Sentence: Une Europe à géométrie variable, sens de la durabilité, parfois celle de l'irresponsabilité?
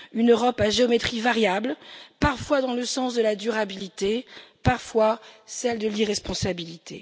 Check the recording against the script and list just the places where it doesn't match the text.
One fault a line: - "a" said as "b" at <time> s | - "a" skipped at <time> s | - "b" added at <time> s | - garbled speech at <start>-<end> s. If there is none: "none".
- "parfois dans le" added at 2.2 s